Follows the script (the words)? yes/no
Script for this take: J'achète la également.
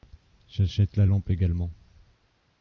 no